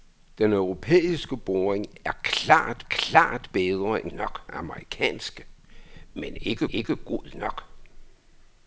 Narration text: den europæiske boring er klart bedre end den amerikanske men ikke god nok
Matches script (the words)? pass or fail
fail